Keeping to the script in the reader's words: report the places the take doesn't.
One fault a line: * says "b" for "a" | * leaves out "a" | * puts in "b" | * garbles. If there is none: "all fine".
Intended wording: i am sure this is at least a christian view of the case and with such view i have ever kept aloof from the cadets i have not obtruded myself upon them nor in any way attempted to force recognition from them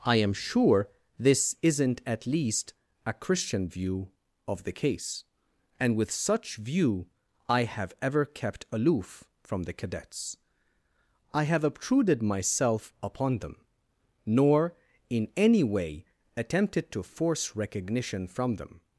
* says "isn't" for "is"
* leaves out "not"